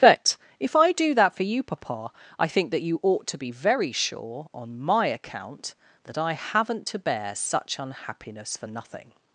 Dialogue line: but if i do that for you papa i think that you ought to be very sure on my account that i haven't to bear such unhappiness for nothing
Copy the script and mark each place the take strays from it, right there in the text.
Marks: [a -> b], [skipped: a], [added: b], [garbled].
but if i do that for you papa i think that you ought to be very sure on my account that i haven't to bear such unhappiness for nothing